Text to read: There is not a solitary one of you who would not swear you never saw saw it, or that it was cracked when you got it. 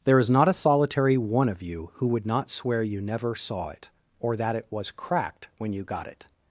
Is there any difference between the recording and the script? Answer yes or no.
yes